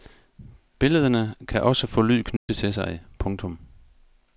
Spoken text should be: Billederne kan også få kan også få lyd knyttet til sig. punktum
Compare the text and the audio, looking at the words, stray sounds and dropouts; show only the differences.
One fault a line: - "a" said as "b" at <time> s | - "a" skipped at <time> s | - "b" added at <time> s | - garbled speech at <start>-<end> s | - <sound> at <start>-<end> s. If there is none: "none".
- "kan også få" skipped at 2.0 s
- dropout at 2.4-2.5 s